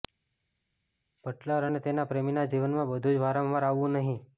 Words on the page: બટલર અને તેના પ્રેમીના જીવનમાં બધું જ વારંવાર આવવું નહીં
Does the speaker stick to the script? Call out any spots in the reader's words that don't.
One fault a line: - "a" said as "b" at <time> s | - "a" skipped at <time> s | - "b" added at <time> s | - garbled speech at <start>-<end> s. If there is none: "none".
none